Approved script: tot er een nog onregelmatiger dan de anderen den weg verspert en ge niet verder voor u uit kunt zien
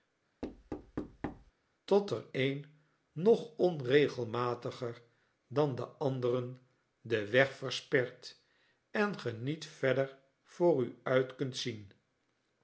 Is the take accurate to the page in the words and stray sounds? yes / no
no